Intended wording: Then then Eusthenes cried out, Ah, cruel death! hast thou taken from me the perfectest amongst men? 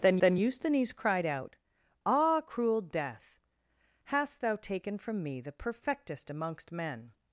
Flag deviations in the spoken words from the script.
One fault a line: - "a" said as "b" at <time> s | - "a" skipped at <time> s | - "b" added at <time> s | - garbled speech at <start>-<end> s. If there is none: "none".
none